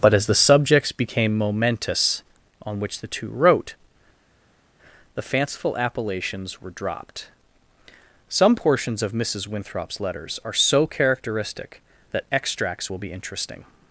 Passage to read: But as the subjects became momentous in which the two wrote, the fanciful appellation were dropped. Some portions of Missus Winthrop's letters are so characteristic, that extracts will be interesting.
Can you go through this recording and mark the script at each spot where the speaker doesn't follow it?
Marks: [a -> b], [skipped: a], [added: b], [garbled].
But as the subjects became momentous [in -> on] which the two wrote, the fanciful [appellation -> appellations] were dropped. Some portions of Missus Winthrop's letters are so characteristic, that extracts will be interesting.